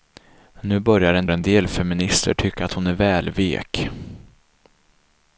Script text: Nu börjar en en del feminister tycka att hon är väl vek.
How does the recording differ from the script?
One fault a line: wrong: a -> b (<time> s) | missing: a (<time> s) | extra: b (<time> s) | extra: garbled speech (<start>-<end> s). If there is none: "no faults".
no faults